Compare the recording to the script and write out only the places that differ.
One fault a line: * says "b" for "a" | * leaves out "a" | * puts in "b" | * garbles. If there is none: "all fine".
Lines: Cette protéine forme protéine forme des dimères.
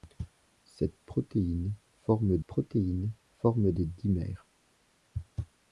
all fine